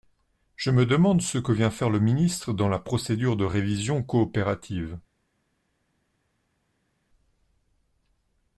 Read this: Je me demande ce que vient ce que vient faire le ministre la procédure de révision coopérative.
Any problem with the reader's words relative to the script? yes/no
yes